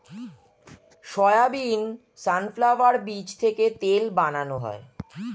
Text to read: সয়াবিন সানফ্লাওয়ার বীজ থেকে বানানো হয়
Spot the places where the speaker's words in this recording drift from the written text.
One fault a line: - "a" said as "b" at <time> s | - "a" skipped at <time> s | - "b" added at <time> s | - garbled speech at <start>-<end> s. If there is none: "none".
- "তেল" added at 3.8 s